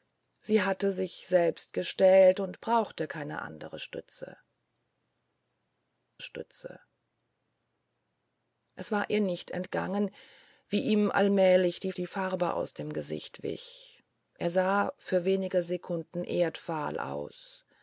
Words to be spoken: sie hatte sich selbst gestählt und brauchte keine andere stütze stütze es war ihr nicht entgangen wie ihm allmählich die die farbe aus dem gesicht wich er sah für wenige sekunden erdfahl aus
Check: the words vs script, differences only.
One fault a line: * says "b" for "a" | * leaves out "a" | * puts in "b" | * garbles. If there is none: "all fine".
all fine